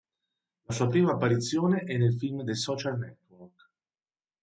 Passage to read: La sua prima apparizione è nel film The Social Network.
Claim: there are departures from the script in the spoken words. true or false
false